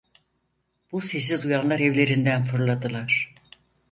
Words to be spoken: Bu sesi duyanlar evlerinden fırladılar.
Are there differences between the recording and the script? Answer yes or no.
no